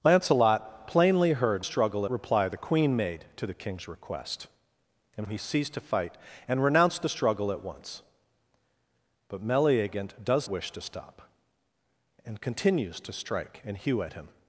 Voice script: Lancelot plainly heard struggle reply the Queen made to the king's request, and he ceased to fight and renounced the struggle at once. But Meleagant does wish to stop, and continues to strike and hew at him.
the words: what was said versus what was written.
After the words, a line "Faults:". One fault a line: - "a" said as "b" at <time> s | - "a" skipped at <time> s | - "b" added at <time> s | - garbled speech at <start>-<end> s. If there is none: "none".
Lancelot plainly heard struggle reply the Queen made to the king's request, and he ceased to fight and renounced the struggle at once. But Meleagant does wish to stop, and continues to strike and hew at him.
Faults:
none